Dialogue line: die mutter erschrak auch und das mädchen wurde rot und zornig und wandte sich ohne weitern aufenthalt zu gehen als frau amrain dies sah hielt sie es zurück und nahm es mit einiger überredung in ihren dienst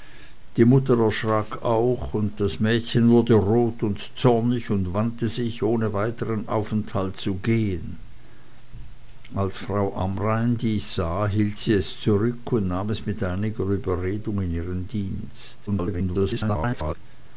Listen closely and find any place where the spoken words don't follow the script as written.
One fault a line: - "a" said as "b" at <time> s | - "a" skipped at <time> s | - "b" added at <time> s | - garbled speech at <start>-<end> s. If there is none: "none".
- garbled speech at 15.7-16.9 s